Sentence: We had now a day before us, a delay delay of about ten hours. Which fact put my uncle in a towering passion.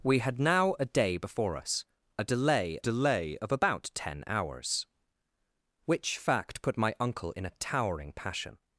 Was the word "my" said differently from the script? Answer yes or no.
no